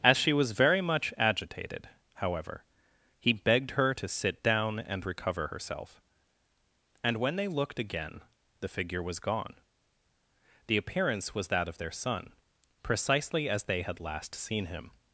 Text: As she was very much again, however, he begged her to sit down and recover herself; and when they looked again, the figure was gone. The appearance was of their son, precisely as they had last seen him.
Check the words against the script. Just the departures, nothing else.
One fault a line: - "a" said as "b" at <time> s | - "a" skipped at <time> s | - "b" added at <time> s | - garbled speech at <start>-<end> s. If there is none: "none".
- "again" said as "agitated" at 1.2 s
- "that" added at 11.5 s